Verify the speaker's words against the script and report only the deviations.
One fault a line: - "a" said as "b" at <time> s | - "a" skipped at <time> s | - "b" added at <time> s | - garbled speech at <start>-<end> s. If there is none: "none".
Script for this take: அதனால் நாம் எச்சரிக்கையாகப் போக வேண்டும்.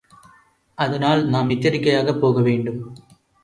none